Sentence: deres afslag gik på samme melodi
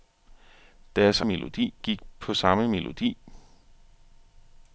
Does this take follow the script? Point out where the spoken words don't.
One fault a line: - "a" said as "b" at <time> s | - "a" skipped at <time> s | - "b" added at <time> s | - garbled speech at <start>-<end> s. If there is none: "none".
- "afslag" said as "melodi" at 1.2 s